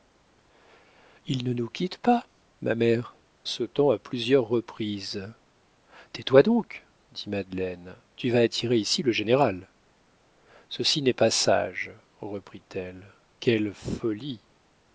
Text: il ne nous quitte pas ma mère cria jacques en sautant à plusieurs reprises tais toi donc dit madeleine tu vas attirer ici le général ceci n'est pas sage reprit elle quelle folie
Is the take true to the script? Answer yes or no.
no